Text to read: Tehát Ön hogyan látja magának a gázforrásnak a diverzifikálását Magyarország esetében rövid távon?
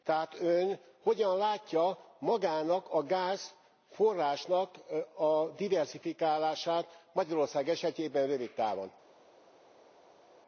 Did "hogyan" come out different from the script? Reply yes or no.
no